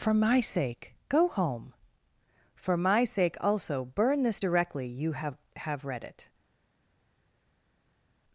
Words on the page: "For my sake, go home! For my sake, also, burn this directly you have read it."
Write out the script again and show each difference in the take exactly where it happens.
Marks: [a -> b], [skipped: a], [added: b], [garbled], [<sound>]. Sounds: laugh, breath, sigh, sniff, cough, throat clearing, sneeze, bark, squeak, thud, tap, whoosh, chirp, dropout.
"For my sake, go home! For my sake, also, burn this directly you have [added: have] read it."